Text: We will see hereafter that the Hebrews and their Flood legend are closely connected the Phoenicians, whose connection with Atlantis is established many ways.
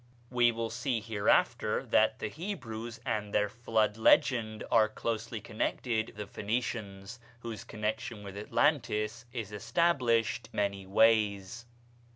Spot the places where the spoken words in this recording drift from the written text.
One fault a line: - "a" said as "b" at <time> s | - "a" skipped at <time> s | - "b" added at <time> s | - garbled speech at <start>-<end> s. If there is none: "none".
none